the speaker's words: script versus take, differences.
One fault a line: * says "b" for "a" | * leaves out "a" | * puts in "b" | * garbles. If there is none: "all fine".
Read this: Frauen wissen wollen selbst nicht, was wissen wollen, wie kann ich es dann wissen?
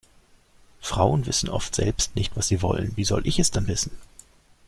* says "oft" for "wollen"
* says "sie" for "wissen"
* says "soll" for "kann"